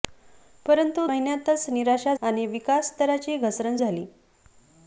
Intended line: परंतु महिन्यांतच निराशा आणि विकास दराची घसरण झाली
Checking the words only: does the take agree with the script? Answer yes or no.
yes